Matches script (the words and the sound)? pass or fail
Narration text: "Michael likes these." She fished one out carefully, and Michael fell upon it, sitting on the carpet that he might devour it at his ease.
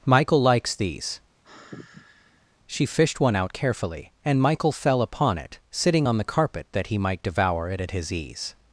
fail